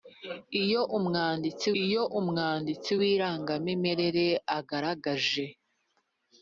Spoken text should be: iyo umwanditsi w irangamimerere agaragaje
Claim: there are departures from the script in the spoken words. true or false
true